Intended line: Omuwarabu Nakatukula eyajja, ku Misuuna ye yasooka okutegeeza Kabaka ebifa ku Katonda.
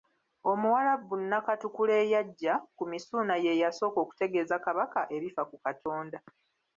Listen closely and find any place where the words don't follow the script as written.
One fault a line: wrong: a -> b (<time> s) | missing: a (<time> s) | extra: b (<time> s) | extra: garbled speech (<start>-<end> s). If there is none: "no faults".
no faults